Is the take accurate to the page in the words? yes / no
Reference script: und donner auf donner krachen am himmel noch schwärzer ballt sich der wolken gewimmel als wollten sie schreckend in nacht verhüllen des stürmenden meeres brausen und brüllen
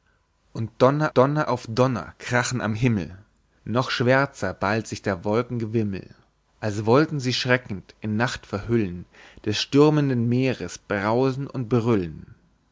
no